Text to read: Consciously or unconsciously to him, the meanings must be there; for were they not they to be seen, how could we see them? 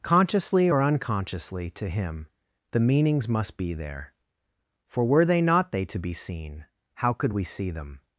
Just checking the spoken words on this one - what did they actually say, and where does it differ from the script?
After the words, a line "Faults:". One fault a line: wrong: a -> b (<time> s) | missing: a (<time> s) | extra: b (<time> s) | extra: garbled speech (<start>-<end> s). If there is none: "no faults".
Consciously or unconsciously to him, the meanings must be there; for were they not they to be seen, how could we see them?
Faults:
no faults